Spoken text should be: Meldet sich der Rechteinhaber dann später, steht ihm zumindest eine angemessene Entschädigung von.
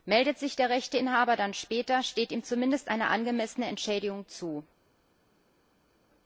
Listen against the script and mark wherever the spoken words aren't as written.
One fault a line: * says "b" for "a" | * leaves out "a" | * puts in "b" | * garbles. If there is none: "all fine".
* says "zu" for "von"